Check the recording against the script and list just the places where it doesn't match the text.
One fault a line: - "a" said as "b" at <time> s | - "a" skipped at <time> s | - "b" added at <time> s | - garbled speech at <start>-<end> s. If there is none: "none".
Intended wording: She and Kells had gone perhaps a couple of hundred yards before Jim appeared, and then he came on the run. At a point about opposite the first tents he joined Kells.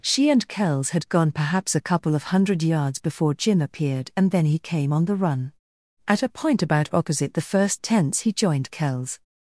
none